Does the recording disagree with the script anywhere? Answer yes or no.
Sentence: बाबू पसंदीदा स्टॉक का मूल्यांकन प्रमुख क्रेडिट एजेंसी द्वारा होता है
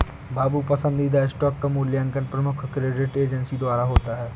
no